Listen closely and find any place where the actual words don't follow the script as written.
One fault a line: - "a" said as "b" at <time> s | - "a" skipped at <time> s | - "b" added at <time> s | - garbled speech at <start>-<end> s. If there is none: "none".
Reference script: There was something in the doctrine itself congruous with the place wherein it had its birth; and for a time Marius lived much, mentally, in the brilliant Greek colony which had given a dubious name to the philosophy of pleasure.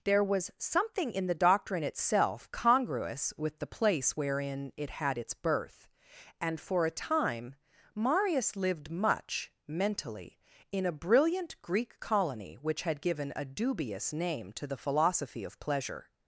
- "the" said as "a" at 10.8 s